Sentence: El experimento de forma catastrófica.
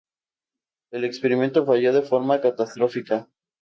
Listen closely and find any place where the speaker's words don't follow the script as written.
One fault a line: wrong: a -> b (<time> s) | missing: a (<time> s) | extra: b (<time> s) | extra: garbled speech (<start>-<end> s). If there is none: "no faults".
extra: falló (1.6 s)